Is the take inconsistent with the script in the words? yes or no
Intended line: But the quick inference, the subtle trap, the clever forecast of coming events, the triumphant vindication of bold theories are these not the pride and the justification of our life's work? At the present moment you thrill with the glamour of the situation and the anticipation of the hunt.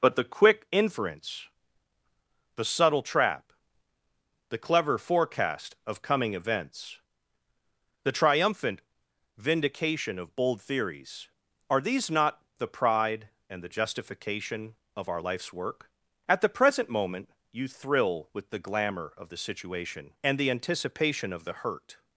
yes